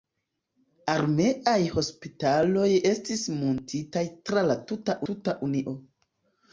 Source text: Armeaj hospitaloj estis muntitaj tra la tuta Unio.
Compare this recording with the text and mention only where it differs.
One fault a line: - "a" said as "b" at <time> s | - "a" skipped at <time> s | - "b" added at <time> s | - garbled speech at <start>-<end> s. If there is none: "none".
- "tuta" added at 5.1 s